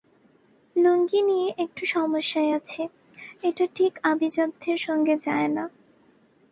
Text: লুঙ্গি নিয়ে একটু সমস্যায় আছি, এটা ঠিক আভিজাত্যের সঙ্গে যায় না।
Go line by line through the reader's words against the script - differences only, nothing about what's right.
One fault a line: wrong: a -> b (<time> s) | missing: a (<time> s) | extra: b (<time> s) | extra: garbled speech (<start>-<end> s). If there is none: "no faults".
no faults